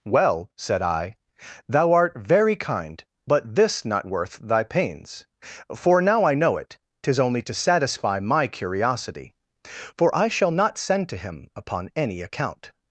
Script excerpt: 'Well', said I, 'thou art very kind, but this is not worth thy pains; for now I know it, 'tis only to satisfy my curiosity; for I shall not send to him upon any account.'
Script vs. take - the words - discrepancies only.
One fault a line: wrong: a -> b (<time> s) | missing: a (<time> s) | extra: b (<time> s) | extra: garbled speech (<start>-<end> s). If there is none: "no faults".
missing: is (3.9 s)